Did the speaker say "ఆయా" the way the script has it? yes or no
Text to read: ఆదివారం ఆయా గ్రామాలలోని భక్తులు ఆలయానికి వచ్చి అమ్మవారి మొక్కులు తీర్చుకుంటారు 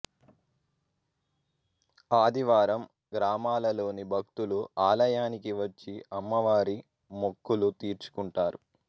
no